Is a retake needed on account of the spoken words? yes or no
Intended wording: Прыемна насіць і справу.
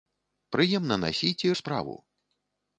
no